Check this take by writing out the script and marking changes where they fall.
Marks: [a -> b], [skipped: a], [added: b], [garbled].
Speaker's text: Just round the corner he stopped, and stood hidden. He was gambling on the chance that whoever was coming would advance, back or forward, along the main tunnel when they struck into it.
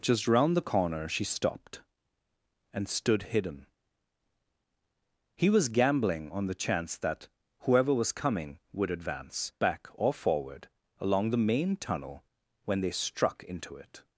Just round the corner [he -> she] stopped, and stood hidden. He was gambling on the chance that whoever was coming would advance, back or forward, along the main tunnel when they struck into it.